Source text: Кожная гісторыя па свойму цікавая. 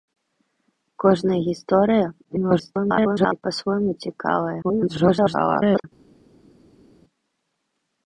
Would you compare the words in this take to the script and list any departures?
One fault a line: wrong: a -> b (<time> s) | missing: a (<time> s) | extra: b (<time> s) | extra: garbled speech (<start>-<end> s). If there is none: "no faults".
extra: garbled speech (2.2-3.4 s)
extra: garbled speech (4.6-5.8 s)